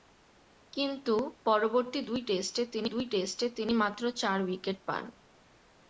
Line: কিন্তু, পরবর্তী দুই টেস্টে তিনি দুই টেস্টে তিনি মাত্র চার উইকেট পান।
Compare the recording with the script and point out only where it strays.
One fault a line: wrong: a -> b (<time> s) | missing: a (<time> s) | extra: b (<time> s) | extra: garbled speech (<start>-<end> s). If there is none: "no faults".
no faults